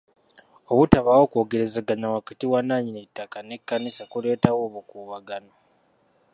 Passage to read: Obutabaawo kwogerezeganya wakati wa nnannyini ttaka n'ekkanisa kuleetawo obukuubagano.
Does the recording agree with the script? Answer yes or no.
yes